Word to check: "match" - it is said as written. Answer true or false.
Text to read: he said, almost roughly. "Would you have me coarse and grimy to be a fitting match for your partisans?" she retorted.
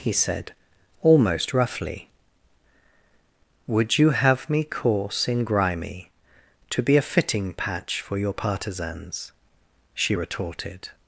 false